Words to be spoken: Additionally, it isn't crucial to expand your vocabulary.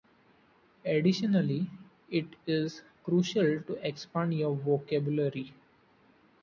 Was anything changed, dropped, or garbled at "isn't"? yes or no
yes